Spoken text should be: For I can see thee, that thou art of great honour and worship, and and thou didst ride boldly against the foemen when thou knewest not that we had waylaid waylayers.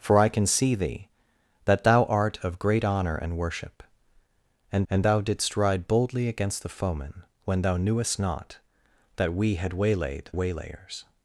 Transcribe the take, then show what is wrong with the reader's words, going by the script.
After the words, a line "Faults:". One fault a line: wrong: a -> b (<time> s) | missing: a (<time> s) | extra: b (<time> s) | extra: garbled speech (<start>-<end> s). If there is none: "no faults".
For I can see thee, that thou art of great honour and worship, and and thou didst ride boldly against the foemen when thou knewest not that we had waylaid waylayers.
Faults:
no faults